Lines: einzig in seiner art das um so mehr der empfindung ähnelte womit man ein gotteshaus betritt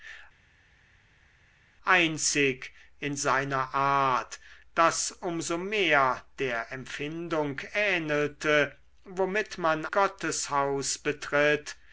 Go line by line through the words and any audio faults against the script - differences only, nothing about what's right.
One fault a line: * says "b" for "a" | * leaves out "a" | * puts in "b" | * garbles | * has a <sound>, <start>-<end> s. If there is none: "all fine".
* leaves out "ein"